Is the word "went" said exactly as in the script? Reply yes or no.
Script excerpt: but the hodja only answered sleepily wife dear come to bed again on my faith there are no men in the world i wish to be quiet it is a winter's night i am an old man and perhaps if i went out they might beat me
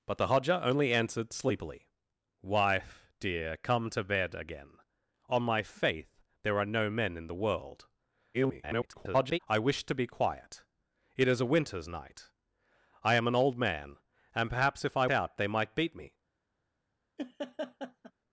no